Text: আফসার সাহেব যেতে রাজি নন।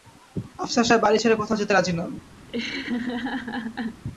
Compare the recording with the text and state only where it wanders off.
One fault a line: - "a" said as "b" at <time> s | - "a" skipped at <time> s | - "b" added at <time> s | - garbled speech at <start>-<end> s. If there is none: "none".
- "বাড়ি ছেড়ে কোথাও" added at 1.0 s